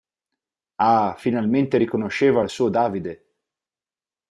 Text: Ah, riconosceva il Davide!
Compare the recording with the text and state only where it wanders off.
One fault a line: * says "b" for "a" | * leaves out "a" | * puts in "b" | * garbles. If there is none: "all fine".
* puts in "finalmente"
* puts in "suo"